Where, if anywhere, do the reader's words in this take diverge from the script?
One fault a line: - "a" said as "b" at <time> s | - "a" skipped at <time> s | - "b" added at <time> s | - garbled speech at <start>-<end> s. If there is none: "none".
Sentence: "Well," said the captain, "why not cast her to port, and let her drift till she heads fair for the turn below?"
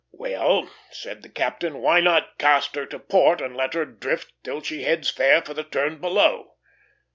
none